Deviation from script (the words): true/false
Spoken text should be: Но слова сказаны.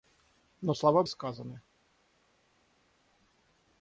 false